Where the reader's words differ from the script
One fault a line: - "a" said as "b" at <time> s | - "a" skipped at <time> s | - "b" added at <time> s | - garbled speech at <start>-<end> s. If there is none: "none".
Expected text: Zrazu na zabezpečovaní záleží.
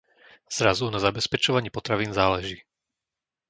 - "potravín" added at 1.7 s